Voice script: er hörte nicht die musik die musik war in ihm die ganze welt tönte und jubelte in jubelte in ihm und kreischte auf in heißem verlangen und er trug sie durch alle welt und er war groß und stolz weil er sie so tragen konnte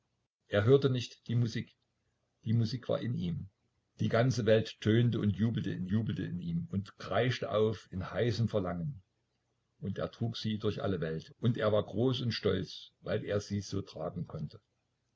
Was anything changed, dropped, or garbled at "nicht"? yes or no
no